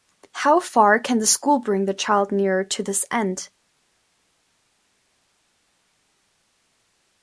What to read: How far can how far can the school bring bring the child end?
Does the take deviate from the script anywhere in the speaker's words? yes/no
yes